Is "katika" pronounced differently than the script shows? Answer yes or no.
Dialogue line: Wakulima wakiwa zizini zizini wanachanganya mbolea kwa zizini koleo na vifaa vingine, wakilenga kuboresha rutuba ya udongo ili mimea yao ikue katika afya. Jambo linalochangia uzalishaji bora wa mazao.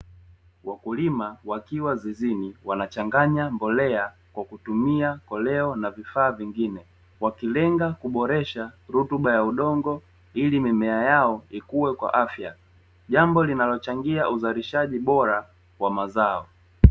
yes